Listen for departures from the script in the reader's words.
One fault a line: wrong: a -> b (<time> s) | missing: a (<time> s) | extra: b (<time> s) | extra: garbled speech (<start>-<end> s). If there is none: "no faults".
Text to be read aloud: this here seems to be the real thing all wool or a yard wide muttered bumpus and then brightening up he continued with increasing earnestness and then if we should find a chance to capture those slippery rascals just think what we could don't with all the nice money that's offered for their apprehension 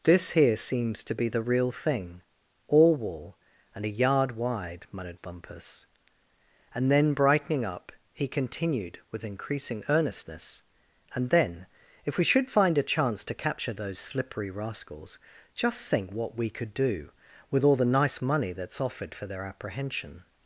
wrong: or -> and (3.8 s)
wrong: don't -> do (16.7 s)